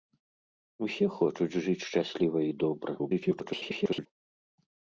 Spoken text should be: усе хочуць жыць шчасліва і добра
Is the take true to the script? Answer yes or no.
no